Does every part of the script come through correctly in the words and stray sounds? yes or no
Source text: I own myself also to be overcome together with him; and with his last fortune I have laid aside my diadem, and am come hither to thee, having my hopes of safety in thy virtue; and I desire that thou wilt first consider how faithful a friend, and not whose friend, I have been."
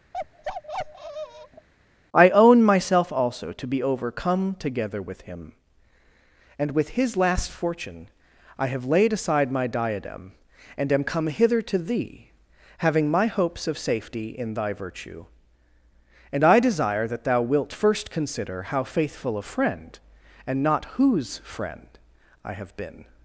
no